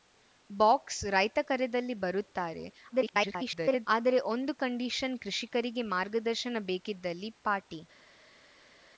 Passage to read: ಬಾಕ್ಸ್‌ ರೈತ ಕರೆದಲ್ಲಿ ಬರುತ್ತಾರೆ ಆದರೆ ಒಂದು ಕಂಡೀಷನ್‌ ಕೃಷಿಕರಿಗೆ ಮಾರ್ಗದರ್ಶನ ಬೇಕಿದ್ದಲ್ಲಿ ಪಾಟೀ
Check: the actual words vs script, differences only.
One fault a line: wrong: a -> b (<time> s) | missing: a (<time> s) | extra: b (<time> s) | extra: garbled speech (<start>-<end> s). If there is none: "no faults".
extra: garbled speech (2.9-3.9 s)